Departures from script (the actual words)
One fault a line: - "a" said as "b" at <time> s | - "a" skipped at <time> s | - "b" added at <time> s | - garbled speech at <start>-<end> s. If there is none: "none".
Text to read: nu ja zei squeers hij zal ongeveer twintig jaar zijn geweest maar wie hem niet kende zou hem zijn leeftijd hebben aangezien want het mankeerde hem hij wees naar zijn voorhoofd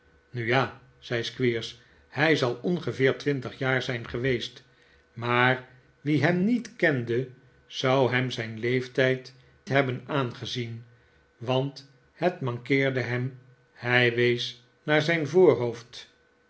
none